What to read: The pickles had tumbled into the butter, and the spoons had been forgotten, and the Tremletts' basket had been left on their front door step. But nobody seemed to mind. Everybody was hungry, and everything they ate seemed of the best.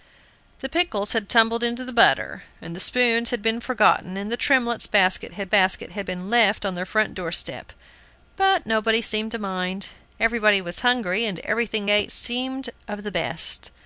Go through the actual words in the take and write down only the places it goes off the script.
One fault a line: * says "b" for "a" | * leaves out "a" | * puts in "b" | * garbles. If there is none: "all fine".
* puts in "basket had"
* leaves out "they"